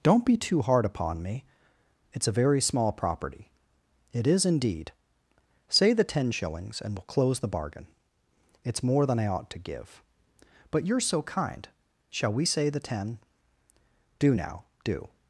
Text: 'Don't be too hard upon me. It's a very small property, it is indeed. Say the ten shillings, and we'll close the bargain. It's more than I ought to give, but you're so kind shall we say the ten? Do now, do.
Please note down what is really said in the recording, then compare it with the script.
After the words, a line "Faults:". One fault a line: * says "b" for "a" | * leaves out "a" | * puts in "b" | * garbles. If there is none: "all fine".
'Don't be too hard upon me. It's a very small property, it is indeed. Say the ten shillings, and we'll close the bargain. It's more than I ought to give, but you're so kind shall we say the ten? Do now, do.
Faults:
all fine